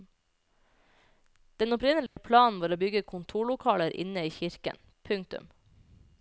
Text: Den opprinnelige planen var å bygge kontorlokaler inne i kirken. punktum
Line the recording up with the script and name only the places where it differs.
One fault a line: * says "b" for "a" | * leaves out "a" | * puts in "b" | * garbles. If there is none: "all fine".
all fine